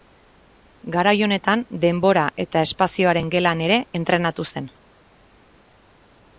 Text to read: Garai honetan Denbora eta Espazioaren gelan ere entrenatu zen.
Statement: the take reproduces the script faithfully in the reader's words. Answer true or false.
true